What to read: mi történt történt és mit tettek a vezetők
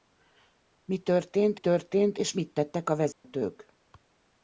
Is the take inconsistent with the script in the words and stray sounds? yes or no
yes